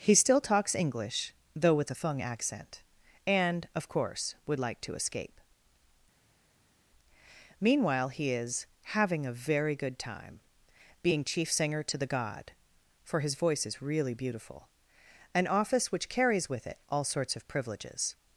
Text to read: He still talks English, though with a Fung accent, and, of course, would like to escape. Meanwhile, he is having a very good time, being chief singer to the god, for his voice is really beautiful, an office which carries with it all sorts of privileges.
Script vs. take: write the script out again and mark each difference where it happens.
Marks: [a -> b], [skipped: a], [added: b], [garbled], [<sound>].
He still talks English, though with a Fung accent, and, of course, would like to escape. Meanwhile, he is having a very good time, being chief singer to the god, for his voice is really beautiful, an office which carries with it all sorts of privileges.